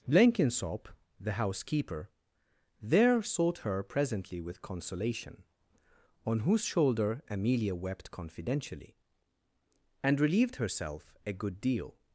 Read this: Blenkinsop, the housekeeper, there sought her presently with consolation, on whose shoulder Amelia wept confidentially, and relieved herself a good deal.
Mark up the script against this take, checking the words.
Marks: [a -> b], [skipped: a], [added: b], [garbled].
Blenkinsop, the housekeeper, there sought her presently with consolation, on whose shoulder Amelia wept confidentially, and relieved herself a good deal.